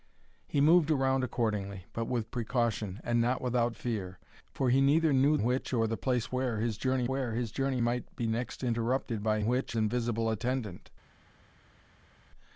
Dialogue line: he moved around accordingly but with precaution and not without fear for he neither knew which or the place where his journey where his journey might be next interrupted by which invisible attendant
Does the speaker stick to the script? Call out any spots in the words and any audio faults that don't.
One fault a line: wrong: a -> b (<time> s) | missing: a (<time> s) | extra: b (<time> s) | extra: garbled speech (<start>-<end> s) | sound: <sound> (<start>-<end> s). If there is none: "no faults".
no faults